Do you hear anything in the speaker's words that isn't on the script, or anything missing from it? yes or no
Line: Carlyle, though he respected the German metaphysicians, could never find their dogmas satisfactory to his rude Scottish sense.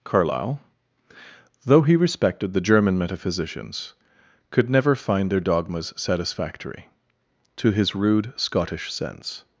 no